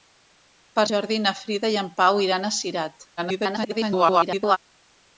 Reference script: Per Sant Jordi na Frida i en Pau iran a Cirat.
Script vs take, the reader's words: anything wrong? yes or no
yes